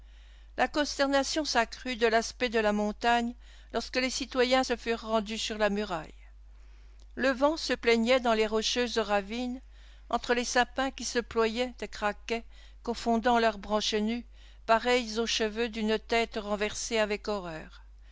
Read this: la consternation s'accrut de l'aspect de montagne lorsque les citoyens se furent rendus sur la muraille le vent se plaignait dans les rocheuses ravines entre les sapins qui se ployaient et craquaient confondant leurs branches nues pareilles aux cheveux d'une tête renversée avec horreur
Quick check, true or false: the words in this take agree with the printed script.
false